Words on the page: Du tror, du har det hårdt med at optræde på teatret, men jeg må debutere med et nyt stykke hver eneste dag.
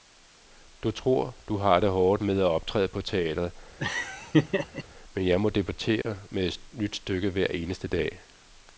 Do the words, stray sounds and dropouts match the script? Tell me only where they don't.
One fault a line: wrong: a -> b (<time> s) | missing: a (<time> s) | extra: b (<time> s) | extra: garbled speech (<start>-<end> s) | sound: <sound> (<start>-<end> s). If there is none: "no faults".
sound: laugh (3.8-4.8 s)
sound: dropout (6.0-6.0 s)